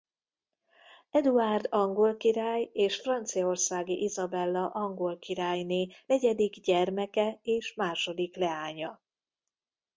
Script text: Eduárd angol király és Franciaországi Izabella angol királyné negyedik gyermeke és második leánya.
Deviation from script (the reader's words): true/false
false